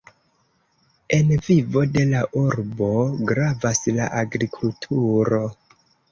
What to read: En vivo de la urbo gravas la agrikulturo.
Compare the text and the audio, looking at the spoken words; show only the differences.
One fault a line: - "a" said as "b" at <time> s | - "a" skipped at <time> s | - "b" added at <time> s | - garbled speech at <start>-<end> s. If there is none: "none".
none